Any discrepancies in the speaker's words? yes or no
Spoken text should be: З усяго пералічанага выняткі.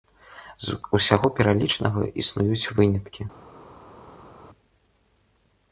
yes